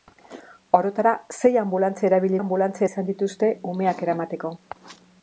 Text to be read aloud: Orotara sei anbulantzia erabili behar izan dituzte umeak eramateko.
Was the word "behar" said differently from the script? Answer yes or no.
yes